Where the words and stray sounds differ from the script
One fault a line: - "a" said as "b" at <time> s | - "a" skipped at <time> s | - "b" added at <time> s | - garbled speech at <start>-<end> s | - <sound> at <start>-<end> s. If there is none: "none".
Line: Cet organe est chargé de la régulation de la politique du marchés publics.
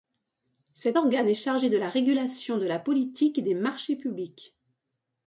- "du" said as "des" at 3.4 s